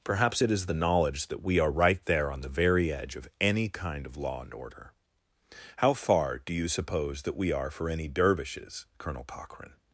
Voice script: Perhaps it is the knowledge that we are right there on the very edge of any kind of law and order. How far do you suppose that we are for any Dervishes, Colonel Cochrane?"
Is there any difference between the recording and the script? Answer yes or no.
no